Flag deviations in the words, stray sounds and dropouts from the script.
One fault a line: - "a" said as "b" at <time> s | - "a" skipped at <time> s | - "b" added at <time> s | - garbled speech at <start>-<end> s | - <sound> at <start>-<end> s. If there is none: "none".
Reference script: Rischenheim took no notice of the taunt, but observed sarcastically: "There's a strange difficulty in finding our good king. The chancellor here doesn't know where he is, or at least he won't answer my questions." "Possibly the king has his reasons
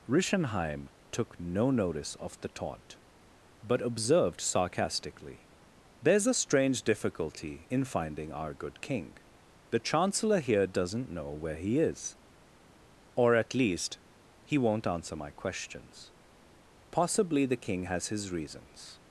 none